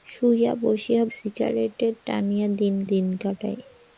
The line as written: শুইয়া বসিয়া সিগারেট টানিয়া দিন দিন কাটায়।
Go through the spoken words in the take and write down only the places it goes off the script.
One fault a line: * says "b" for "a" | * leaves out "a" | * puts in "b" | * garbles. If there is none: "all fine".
all fine